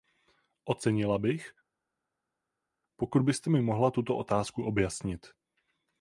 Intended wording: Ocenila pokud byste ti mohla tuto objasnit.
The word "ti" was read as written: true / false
false